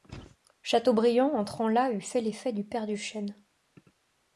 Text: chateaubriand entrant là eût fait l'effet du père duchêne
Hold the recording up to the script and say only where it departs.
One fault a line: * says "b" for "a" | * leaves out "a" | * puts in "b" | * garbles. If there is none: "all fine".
all fine